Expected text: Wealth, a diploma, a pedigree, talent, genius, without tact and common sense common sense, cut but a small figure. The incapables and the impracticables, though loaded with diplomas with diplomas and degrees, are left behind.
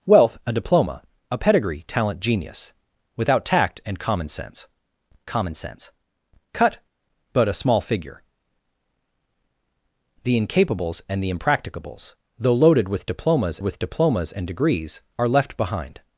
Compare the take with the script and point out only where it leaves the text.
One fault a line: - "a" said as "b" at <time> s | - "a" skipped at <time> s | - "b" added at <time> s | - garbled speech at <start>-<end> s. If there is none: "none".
none